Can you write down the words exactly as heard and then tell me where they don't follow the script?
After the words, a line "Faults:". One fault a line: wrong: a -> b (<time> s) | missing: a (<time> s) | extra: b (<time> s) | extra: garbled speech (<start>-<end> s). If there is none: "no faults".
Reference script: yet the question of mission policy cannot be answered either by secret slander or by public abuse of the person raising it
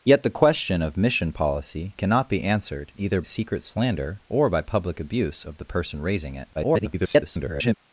yet the question of mission policy cannot be answered either secret slander or by public abuse of the person raising it [garbled]
Faults:
missing: by (3.2 s)
extra: garbled speech (6.5-7.7 s)